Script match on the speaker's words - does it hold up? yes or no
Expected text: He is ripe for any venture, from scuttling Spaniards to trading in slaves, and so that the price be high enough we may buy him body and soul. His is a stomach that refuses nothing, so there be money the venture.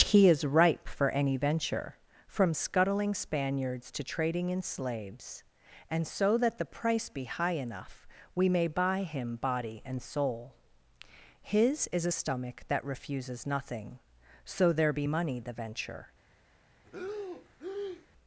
yes